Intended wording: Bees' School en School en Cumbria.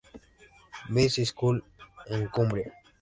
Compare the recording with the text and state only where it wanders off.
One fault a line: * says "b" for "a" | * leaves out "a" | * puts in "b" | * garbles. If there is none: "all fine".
* leaves out "School en"